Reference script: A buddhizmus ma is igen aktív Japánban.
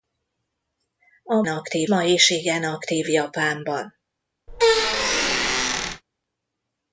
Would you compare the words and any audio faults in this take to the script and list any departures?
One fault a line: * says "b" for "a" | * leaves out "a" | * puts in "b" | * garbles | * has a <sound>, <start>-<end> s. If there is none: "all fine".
* says "aktív" for "buddhizmus"
* has a squeak, 4.5-6.0 s